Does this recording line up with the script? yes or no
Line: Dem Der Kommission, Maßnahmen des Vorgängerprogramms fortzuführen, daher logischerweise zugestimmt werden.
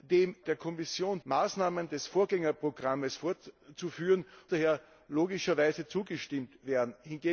yes